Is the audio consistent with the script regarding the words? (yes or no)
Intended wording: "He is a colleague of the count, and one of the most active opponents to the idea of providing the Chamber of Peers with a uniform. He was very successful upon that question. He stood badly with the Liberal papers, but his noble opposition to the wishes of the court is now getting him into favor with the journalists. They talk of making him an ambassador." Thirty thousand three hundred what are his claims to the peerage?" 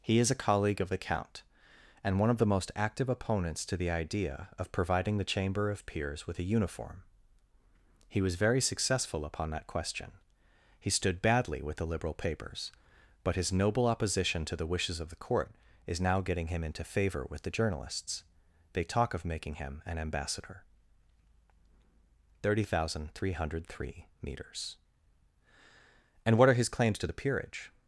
no